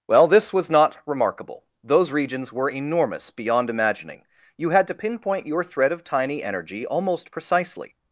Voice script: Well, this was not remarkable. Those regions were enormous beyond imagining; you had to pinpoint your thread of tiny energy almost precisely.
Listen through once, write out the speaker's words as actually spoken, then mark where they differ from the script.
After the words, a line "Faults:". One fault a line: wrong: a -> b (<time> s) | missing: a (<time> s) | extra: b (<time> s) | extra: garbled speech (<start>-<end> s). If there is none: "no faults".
Well, this was not remarkable. Those regions were enormous beyond imagining; you had to pinpoint your thread of tiny energy almost precisely.
Faults:
no faults